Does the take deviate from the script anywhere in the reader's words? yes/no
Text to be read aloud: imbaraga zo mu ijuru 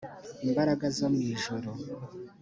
no